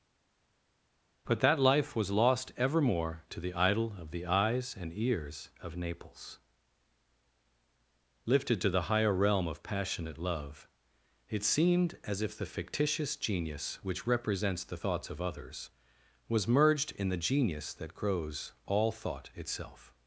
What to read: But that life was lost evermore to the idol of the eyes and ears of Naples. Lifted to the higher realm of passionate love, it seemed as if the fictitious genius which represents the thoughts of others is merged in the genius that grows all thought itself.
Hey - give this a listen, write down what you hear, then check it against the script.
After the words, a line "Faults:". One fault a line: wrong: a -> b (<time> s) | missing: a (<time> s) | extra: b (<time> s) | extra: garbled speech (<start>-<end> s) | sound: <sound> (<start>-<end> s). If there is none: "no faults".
But that life was lost evermore to the idol of the eyes and ears of Naples. Lifted to the higher realm of passionate love, it seemed as if the fictitious genius which represents the thoughts of others was merged in the genius that grows all thought itself.
Faults:
wrong: is -> was (16.3 s)